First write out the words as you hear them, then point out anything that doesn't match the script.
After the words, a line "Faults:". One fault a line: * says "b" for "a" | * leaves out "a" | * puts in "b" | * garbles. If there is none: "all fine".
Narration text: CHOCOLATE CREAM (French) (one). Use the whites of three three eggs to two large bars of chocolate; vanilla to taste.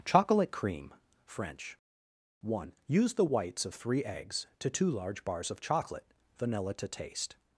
CHOCOLATE CREAM (French) (one). Use the whites of three eggs to two large bars of chocolate; vanilla to taste.
Faults:
* leaves out "three"